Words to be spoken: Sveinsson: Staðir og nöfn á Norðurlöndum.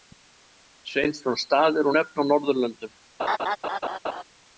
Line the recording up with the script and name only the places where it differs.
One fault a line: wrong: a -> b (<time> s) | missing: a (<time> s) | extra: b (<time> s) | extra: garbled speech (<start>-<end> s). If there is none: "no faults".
no faults